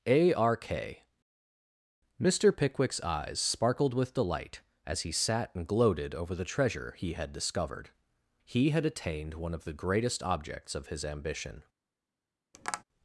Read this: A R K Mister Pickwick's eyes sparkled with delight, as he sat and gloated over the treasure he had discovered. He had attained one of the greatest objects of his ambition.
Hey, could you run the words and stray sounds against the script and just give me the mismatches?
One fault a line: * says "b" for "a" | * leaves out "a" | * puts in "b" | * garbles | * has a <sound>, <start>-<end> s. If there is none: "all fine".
* has a tap, 12.5-12.8 s